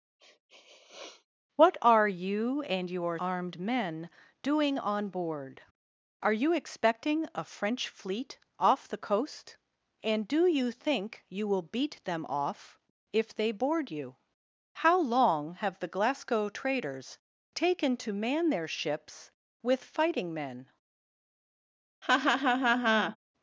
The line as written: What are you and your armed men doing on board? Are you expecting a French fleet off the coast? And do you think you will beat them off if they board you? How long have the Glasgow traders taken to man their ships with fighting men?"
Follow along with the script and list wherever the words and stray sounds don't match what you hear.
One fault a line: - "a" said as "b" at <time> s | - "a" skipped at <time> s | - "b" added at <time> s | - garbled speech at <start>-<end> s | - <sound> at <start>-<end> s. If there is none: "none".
- sniff at 0.2-1.3 s
- laugh at 22.0-23.2 s